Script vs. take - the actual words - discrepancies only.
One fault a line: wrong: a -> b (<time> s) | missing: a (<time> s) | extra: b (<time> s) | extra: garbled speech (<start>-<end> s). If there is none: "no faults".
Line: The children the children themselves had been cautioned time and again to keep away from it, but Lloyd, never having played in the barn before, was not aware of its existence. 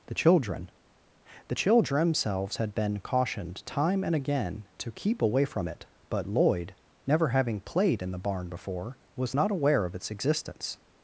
no faults